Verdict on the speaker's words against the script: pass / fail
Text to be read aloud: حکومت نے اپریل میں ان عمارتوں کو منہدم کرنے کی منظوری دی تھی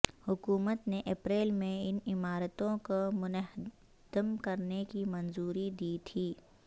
pass